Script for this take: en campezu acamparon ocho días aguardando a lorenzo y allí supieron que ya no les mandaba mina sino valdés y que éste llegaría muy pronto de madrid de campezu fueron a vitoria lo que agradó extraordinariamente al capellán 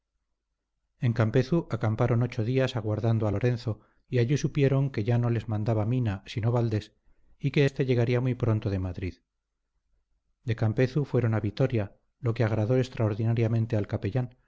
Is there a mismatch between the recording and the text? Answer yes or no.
no